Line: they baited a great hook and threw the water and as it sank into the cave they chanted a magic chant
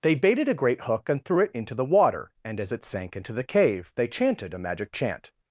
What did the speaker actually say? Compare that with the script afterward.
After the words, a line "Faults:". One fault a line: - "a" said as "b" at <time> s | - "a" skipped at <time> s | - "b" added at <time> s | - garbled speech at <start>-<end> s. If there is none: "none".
they baited a great hook and threw it into the water and as it sank into the cave they chanted a magic chant
Faults:
- "it into" added at 1.4 s